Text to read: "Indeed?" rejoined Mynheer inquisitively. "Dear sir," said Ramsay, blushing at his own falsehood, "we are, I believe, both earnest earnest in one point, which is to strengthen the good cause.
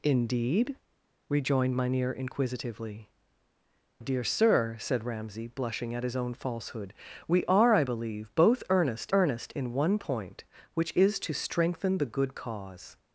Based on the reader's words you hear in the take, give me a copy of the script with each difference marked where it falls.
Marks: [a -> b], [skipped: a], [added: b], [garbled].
"Indeed?" rejoined Mynheer inquisitively. "Dear sir," said Ramsay, blushing at his own falsehood, "we are, I believe, both earnest earnest in one point, which is to strengthen the good cause.